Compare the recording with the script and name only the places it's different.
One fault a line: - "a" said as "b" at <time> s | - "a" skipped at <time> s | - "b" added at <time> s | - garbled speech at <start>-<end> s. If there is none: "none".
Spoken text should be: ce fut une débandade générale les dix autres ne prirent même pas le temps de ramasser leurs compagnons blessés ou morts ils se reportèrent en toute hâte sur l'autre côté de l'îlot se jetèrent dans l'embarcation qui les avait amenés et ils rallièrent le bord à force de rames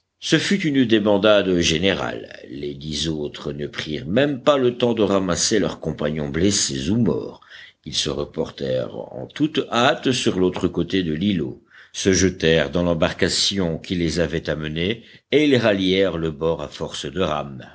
none